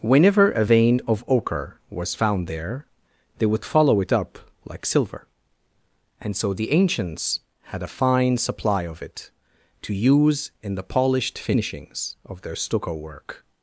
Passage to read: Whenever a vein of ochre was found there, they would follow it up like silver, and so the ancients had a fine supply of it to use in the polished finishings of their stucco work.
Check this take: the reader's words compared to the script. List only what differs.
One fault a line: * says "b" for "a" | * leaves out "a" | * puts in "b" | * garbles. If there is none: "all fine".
all fine